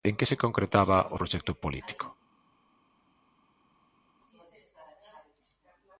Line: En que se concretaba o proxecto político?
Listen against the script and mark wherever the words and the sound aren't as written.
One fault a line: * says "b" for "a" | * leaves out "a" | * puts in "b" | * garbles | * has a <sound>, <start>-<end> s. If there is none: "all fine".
all fine